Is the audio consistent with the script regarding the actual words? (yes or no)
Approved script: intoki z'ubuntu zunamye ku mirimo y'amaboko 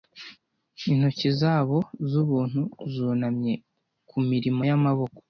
no